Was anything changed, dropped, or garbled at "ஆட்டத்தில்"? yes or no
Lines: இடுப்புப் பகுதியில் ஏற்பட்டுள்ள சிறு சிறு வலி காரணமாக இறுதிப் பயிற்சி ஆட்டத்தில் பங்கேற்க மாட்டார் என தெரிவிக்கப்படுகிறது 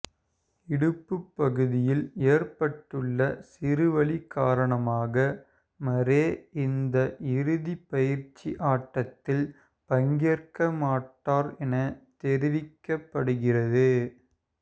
no